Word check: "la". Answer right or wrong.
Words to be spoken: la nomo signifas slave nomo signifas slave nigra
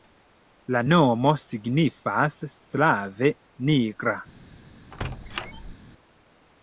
right